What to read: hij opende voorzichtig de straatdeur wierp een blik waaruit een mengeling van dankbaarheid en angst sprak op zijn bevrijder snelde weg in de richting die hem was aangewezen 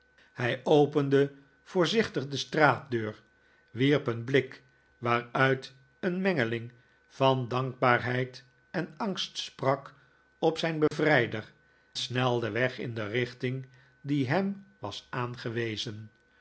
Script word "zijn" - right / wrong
right